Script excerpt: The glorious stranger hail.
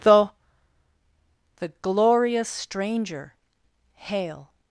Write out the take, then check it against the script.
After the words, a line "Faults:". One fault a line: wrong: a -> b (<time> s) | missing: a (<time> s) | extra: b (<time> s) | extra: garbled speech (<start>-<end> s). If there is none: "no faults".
The the glorious stranger hail.
Faults:
extra: the (1.6 s)